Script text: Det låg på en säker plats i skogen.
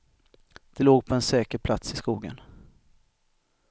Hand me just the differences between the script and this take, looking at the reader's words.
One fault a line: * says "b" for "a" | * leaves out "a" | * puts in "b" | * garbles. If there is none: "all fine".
all fine